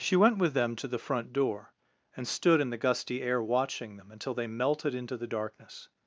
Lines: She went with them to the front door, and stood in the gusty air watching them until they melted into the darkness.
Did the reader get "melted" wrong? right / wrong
right